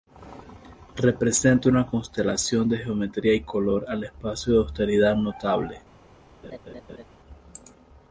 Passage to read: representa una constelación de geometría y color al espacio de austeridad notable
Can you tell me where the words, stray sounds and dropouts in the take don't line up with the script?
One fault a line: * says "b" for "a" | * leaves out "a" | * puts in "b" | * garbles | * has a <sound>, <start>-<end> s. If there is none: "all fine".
* has a laugh, 6.4-7.0 s